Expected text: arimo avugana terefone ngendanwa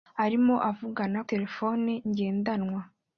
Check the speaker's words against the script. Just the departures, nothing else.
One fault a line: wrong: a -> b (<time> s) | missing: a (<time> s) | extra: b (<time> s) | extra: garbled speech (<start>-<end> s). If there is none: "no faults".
no faults